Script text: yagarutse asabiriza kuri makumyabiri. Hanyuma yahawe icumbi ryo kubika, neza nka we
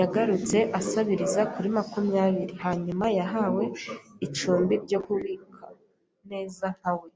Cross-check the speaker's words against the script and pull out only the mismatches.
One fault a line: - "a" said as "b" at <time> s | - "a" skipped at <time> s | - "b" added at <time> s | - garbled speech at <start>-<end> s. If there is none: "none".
none